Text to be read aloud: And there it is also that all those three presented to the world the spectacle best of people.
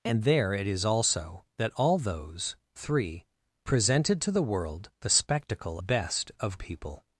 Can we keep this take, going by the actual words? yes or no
yes